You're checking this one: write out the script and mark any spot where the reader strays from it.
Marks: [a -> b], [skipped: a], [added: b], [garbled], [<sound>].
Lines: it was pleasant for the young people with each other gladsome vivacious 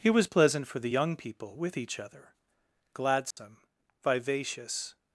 [it -> he] was pleasant for the young people with each other gladsome [dropout] vivacious